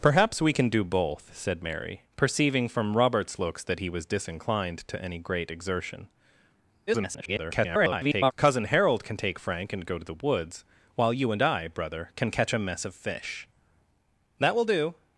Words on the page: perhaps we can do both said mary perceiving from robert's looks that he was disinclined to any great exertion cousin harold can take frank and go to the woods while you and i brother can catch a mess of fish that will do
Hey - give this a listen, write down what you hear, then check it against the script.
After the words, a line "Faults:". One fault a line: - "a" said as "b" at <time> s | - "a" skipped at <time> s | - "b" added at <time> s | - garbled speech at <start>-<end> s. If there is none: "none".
perhaps we can do both said mary perceiving from robert's looks that he was disinclined to any great exertion [garbled] cousin harold can take frank and go to the woods while you and i brother can catch a mess of fish that will do
Faults:
- garbled speech at 6.9-8.3 s